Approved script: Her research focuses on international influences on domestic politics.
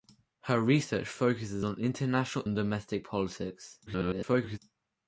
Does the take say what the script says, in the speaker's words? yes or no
no